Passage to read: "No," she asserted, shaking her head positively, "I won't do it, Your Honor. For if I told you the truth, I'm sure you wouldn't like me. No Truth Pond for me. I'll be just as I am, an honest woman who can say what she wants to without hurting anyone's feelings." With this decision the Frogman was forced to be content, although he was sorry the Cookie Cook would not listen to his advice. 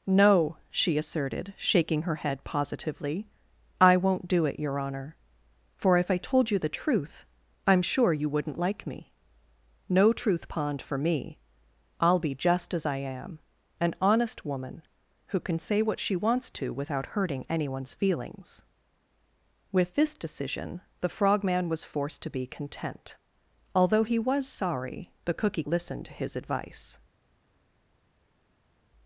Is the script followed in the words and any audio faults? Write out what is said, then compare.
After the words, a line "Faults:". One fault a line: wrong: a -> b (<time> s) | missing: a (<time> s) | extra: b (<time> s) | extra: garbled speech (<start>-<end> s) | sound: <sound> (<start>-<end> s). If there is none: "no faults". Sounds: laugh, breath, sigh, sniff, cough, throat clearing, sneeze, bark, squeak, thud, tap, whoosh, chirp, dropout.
"No," she asserted, shaking her head positively, "I won't do it, Your Honor. For if I told you the truth, I'm sure you wouldn't like me. No Truth Pond for me. I'll be just as I am, an honest woman who can say what she wants to without hurting anyone's feelings." With this decision the Frogman was forced to be content, although he was sorry the Cookie Listen to his advice.
Faults:
missing: Cook would not (25.6 s)